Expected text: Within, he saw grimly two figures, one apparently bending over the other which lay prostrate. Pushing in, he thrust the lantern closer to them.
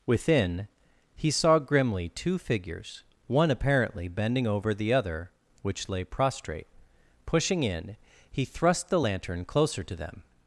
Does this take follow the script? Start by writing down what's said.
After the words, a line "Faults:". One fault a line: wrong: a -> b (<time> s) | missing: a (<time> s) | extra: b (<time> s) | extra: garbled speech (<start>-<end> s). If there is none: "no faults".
Within, he saw grimly two figures, one apparently bending over the other which lay prostrate. Pushing in, he thrust the lantern closer to them.
Faults:
no faults